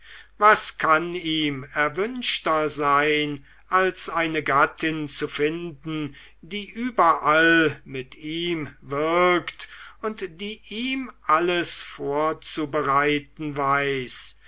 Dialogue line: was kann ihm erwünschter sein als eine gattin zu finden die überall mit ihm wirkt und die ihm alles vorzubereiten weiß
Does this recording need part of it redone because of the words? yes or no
no